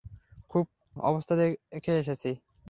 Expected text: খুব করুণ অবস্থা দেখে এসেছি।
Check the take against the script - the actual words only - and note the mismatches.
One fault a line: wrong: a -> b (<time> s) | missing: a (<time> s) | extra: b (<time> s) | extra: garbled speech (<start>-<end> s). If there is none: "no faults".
missing: করুণ (0.7 s)